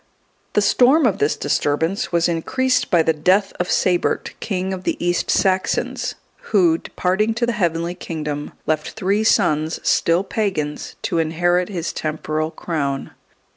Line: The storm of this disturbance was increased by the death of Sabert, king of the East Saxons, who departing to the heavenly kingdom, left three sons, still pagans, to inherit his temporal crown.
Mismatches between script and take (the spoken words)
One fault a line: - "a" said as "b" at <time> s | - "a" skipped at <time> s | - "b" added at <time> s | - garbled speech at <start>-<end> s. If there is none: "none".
none